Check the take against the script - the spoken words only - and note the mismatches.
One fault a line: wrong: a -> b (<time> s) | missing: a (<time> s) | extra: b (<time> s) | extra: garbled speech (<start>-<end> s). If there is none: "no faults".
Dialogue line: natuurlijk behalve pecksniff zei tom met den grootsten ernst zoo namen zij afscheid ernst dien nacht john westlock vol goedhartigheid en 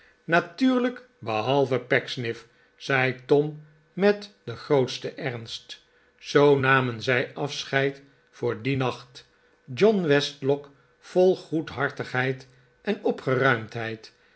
wrong: ernst -> voor (8.3 s)